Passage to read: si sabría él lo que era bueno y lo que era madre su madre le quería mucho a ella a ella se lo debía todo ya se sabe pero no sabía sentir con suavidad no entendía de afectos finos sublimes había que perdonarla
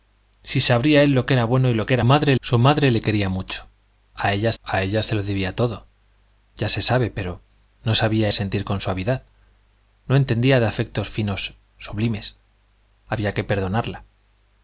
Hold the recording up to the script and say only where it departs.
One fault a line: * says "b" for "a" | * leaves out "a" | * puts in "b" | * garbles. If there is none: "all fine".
all fine